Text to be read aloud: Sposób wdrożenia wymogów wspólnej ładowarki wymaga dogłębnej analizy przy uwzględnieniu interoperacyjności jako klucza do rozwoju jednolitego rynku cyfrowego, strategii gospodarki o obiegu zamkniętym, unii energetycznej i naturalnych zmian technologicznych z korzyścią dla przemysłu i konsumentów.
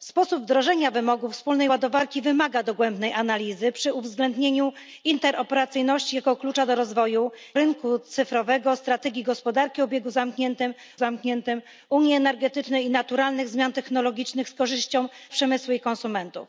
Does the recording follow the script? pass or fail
fail